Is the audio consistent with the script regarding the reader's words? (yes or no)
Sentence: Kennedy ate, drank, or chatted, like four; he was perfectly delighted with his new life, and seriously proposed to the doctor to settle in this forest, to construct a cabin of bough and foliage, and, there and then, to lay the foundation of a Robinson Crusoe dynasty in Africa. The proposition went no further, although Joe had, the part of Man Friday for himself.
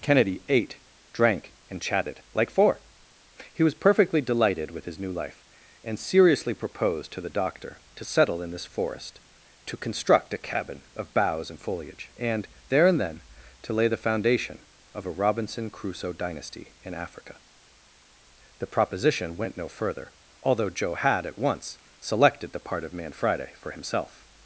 no